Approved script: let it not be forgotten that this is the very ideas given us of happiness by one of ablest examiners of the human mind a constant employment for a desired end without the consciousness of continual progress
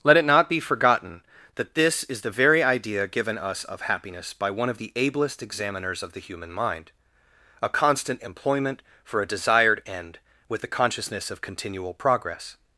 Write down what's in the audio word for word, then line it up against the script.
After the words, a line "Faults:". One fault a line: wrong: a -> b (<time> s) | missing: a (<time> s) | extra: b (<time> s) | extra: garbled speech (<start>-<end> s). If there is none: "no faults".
let it not be forgotten that this is the very idea given us of happiness by one of the ablest examiners of the human mind a constant employment for a desired end with the consciousness of continual progress
Faults:
wrong: ideas -> idea (2.6 s)
extra: the (4.8 s)
wrong: without -> with (10.5 s)